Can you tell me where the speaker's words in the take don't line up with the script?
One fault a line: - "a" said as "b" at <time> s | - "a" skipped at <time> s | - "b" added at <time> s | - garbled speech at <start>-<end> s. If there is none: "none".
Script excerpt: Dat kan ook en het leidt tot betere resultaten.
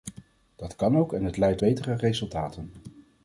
- "tot" skipped at 1.6 s